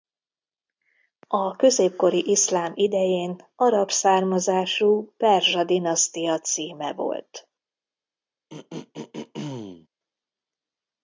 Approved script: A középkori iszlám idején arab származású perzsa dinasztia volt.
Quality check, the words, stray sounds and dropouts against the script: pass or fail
fail